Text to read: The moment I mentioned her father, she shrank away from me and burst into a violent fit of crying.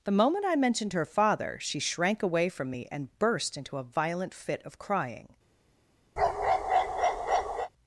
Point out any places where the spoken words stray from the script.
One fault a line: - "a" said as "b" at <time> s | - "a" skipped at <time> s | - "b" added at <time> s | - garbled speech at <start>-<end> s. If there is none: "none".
none